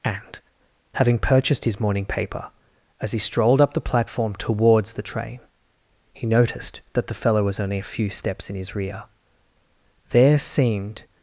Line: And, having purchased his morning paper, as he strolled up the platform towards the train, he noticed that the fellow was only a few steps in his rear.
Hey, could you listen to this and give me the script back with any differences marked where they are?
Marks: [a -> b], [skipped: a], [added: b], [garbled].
And, having purchased his morning paper, as he strolled up the platform towards the train, he noticed that the fellow was only a few steps in his rear. [added: There seemed]